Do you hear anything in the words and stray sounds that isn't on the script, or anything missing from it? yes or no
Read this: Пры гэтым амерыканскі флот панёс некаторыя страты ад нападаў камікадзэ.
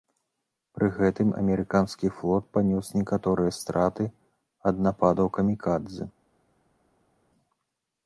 no